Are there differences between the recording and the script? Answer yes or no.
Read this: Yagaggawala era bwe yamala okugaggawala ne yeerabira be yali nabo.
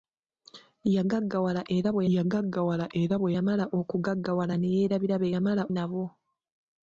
yes